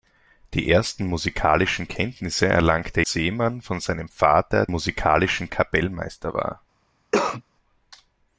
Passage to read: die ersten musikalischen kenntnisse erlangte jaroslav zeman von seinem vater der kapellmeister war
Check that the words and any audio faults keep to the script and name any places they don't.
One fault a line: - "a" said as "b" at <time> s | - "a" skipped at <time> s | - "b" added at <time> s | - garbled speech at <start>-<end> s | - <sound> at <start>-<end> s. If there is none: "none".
- "jaroslav" skipped at 3.0 s
- "der" said as "musikalischen" at 4.7 s
- cough at 7.1-7.4 s